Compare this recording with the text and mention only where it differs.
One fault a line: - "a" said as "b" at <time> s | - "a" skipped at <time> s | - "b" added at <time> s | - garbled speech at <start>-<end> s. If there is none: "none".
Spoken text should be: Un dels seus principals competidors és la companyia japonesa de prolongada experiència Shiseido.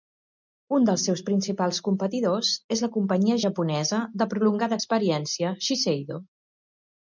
none